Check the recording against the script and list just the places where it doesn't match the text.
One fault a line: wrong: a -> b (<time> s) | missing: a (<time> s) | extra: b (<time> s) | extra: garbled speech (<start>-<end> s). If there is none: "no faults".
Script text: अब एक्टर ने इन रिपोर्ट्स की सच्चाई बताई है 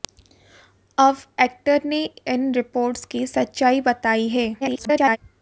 extra: garbled speech (4.6-5.2 s)